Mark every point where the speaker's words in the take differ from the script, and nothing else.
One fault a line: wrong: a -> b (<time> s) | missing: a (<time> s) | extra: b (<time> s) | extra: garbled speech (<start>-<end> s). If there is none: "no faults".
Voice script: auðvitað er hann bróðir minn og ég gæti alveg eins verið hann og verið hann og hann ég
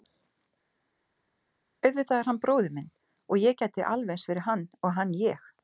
missing: verið hann og (5.0 s)